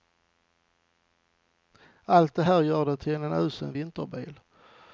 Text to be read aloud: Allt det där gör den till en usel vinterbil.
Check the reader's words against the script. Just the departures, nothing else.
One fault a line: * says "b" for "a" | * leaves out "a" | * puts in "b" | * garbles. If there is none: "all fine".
* says "här" for "där"